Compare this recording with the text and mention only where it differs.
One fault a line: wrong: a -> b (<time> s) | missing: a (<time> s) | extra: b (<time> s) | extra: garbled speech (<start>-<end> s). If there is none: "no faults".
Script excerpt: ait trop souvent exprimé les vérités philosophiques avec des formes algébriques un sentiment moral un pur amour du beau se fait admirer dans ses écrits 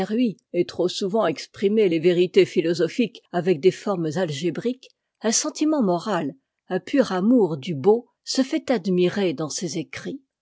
no faults